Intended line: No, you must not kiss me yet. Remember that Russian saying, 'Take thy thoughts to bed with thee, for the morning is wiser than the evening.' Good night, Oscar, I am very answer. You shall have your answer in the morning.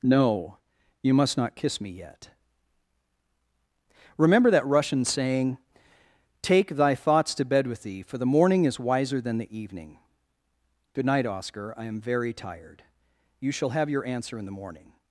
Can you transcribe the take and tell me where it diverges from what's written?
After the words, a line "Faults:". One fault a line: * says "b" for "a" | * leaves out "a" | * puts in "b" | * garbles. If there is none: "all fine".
No, you must not kiss me yet. Remember that Russian saying, 'Take thy thoughts to bed with thee, for the morning is wiser than the evening.' Good night, Oscar, I am very tired. You shall have your answer in the morning.
Faults:
* says "tired" for "answer"